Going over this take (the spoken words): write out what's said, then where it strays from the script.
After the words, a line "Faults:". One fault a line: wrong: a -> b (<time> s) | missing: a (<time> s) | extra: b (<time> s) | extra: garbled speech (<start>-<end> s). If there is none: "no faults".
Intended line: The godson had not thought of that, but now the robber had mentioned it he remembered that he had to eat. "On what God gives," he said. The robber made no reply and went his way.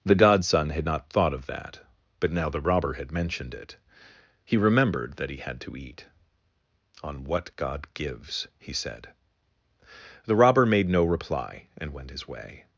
The godson had not thought of that, but now the robber had mentioned it he remembered that he had to eat. "On what God gives," he said. The robber made no reply and went his way.
Faults:
no faults